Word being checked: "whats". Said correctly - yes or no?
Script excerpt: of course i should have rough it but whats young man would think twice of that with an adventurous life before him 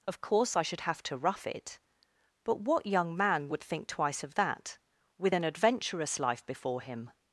no